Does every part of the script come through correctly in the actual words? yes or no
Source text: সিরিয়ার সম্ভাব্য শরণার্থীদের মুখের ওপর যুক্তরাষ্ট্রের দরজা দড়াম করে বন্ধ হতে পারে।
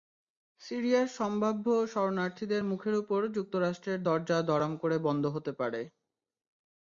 yes